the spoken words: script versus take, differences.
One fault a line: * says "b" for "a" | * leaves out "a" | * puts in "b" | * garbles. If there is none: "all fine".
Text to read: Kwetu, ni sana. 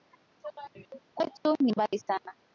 * puts in "mbali"